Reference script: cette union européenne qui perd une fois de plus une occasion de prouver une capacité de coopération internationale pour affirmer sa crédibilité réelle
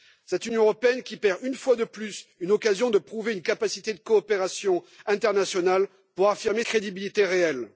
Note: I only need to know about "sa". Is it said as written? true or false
false